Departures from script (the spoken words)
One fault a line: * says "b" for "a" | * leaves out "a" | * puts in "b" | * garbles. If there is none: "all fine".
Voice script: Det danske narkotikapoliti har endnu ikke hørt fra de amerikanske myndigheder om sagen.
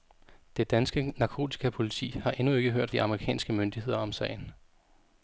* leaves out "fra"